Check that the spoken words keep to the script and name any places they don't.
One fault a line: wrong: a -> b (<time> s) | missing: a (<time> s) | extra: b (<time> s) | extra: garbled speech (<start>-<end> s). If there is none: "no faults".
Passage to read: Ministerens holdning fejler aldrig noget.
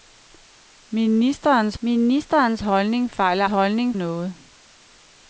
extra: ministerens (1.8 s)
wrong: aldrig -> holdning (3.4 s)